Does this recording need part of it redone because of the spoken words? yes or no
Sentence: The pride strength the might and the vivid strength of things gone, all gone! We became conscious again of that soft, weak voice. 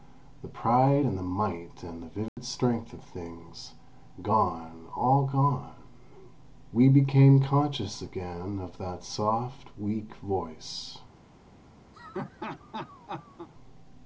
yes